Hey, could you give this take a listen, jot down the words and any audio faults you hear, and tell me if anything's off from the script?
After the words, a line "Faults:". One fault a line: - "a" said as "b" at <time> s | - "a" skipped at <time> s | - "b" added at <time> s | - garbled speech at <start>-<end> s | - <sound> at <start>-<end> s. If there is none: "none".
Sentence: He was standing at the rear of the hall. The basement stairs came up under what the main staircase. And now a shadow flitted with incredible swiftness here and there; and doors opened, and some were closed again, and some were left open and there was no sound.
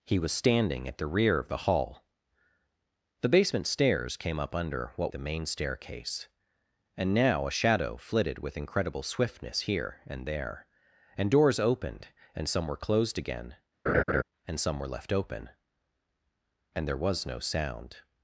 He was standing at the rear of the hall. The basement stairs came up under what the main staircase. And now a shadow flitted with incredible swiftness here and there; and doors opened, and some were closed again, and some were left open and there was no sound.
Faults:
- laugh at 13.9-14.2 s